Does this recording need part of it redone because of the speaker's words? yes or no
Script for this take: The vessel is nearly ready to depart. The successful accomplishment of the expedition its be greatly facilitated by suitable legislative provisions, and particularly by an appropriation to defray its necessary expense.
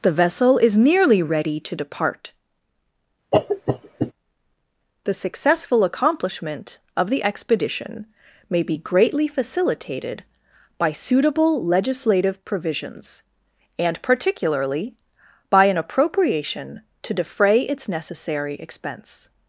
yes